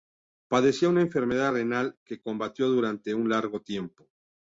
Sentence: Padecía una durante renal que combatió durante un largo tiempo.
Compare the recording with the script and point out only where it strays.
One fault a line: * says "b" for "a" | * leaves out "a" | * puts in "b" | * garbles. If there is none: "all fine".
* says "enfermedad" for "durante"